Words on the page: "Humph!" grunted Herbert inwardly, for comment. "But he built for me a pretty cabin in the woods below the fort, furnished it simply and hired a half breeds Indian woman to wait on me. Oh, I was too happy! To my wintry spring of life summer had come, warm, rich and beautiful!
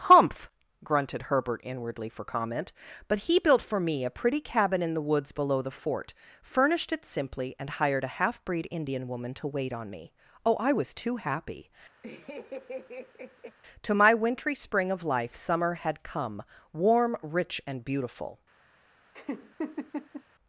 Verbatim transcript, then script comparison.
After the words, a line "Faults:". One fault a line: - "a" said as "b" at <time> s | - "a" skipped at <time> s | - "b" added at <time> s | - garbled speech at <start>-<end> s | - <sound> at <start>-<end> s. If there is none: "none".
"Humph!" grunted Herbert inwardly, for comment. "But he built for me a pretty cabin in the woods below the fort, furnished it simply and hired a half breed Indian woman to wait on me. Oh, I was too happy! To my wintry spring of life summer had come, warm, rich and beautiful!
Faults:
- "breeds" said as "breed" at 8.5 s
- laugh at 12.0-13.6 s
- laugh at 19.1-20.2 s